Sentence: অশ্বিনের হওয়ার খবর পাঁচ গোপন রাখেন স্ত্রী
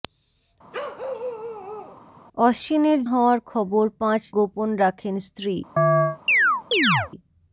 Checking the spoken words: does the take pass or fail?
pass